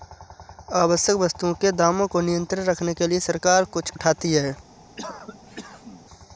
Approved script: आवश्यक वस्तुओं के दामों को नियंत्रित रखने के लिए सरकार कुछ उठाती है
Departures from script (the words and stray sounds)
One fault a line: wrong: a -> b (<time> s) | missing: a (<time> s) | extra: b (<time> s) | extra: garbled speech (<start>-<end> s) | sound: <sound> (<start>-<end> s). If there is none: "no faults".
sound: cough (5.0-6.1 s)